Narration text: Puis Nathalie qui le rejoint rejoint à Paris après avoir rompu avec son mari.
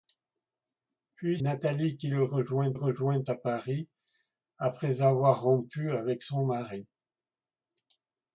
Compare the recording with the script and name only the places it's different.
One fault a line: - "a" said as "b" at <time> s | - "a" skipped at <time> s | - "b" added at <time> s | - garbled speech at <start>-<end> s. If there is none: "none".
none